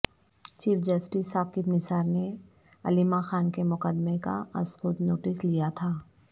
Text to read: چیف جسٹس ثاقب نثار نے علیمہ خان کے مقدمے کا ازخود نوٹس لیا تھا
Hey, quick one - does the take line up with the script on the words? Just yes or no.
yes